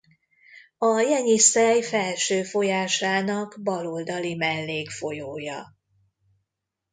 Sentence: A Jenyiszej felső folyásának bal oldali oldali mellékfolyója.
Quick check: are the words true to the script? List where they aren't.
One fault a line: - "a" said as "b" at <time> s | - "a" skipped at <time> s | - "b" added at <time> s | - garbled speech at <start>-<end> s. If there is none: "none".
- "oldali" skipped at 4.3 s